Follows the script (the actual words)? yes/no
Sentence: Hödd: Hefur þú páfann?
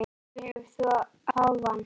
yes